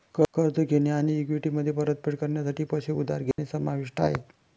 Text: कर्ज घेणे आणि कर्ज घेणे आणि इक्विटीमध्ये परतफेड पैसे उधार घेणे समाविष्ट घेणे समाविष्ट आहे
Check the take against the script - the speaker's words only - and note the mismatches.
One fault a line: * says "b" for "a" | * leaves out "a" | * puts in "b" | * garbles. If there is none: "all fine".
* leaves out "कर्ज घेणे आणि"
* puts in "करण्यासाठी"
* leaves out "घेणे समाविष्ट"